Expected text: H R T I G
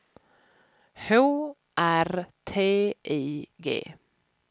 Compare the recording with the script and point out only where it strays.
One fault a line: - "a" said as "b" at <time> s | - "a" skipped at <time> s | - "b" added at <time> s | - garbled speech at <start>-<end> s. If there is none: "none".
none